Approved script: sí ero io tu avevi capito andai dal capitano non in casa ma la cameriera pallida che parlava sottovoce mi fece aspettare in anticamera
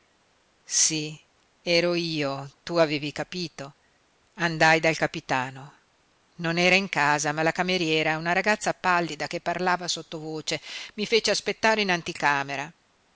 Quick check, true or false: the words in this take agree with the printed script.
false